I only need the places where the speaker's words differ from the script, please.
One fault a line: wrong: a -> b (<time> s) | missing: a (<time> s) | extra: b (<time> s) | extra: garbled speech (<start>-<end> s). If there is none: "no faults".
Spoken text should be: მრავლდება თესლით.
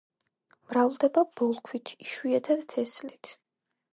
extra: ბოლქვით იშვიათად (1.4 s)